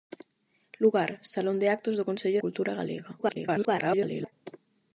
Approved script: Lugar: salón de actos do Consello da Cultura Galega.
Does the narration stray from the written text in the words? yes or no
yes